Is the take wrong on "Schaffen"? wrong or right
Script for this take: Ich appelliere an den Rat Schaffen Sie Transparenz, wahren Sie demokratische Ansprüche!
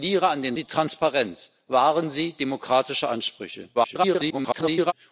wrong